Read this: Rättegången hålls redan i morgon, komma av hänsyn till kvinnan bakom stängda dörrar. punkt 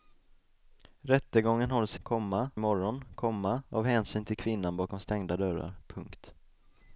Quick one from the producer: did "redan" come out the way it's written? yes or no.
no